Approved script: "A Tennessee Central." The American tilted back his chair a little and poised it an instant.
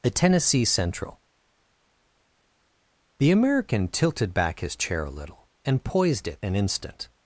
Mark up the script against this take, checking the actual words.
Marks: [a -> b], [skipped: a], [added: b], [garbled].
"A Tennessee Central." The American tilted back his chair a little and poised it an instant.